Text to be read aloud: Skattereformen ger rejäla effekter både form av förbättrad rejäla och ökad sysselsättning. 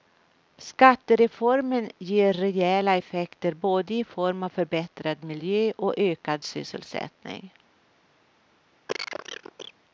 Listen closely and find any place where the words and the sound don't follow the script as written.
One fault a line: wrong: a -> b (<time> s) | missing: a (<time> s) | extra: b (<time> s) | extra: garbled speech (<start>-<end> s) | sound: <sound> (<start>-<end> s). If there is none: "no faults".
extra: i (3.9 s)
wrong: rejäla -> miljö (5.2 s)
sound: cough (8.9-9.7 s)